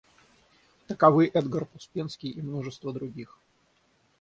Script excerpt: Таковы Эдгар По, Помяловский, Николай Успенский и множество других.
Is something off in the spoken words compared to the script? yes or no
yes